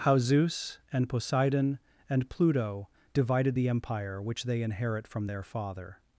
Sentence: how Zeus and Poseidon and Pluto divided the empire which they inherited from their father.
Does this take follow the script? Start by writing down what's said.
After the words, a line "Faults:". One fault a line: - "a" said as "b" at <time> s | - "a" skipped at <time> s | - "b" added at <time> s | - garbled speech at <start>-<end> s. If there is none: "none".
how Zeus and Poseidon and Pluto divided the empire which they inherit from their father.
Faults:
- "inherited" said as "inherit" at 4.6 s